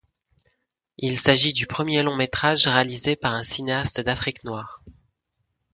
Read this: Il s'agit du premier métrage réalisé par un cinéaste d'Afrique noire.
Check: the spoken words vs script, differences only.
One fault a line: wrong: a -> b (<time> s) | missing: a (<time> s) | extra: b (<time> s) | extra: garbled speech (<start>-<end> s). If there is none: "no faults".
extra: long (2.0 s)